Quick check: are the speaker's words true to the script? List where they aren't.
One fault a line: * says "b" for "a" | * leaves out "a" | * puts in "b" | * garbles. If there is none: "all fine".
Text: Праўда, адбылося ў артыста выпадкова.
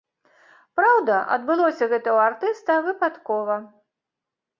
* puts in "гэта"